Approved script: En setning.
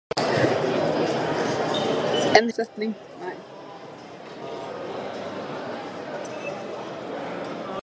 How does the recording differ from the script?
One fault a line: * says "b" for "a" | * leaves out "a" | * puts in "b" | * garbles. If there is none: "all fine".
all fine